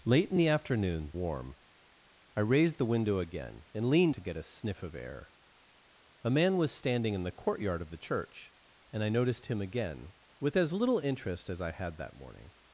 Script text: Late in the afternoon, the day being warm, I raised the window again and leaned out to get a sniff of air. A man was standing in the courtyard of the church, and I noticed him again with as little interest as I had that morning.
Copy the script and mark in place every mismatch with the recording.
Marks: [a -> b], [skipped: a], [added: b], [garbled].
Late in the afternoon, [skipped: the day being] warm, I raised the window again and leaned [skipped: out] to get a sniff of air. A man was standing in the courtyard of the church, and I noticed him again with as little interest as I had that morning.